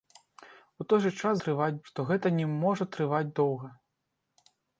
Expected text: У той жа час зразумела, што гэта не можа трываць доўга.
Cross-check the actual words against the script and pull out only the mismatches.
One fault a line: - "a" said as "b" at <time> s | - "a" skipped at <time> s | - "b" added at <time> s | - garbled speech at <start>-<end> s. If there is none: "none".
- "зразумела" said as "трываць" at 1.4 s